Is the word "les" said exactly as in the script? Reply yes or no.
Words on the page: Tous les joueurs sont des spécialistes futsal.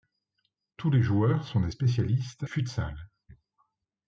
yes